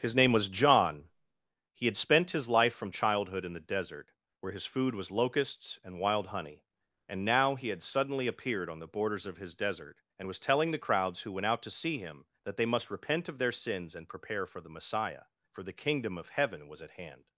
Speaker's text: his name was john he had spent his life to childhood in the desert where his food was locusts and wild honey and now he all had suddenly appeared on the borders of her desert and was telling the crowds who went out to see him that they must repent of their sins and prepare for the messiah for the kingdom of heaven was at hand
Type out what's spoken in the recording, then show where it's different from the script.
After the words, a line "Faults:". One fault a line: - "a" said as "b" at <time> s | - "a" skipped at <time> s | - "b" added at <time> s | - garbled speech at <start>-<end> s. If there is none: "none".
his name was john he had spent his life from childhood in the desert where his food was locusts and wild honey and now he had suddenly appeared on the borders of his desert and was telling the crowds who went out to see him that they must repent of their sins and prepare for the messiah for the kingdom of heaven was at hand
Faults:
- "to" said as "from" at 2.7 s
- "all" skipped at 7.7 s
- "her" said as "his" at 9.4 s